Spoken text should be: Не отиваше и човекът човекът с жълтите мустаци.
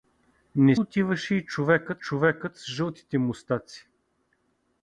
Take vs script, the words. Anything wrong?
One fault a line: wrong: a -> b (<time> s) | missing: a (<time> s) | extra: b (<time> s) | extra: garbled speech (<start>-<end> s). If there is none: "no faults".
no faults